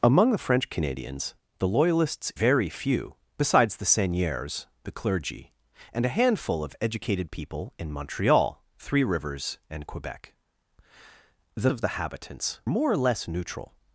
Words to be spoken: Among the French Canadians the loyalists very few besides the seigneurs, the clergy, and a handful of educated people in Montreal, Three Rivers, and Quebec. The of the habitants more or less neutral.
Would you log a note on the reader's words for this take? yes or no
no